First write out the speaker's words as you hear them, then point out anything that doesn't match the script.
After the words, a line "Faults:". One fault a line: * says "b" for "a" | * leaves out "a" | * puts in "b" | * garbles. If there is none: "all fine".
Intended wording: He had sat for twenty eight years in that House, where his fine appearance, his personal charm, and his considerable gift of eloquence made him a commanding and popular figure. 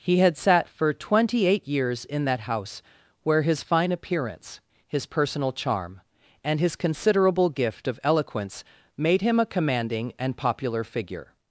He had sat for twenty eight years in that House, where his fine appearance, his personal charm, and his considerable gift of eloquence made him a commanding and popular figure.
Faults:
all fine